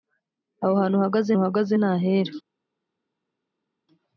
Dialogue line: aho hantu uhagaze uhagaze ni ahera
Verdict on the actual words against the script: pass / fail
pass